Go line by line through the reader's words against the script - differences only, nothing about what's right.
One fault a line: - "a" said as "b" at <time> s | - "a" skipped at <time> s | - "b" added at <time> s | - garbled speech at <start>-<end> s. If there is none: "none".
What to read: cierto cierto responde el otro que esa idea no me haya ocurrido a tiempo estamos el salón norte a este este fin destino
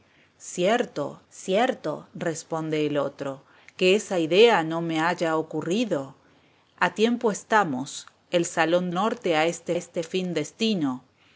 none